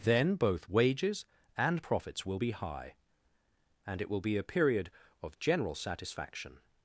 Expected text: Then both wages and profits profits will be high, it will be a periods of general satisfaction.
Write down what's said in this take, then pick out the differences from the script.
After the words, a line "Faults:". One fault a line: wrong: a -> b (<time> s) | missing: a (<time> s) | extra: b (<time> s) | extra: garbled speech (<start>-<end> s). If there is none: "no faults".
Then both wages and profits will be high, and it will be a period of general satisfaction.
Faults:
missing: profits (2.2 s)
extra: and (3.9 s)
wrong: periods -> period (4.4 s)